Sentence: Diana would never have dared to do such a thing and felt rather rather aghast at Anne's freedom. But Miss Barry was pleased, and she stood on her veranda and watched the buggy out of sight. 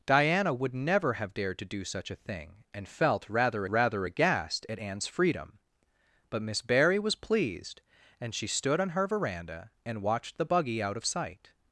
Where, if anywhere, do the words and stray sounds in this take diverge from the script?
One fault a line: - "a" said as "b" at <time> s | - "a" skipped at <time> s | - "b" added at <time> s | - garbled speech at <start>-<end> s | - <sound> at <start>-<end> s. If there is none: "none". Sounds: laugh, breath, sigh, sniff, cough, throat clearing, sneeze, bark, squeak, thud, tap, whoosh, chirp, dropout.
none